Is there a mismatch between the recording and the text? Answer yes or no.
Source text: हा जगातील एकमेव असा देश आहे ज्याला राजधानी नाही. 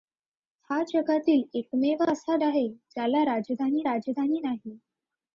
yes